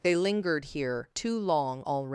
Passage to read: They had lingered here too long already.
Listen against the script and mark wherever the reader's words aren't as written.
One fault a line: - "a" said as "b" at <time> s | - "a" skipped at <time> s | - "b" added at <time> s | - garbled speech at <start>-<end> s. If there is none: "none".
- "had" skipped at 0.1 s